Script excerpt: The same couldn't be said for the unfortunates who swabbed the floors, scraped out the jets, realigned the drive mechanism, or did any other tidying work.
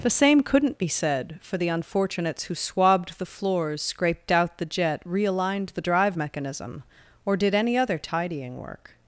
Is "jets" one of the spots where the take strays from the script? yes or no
yes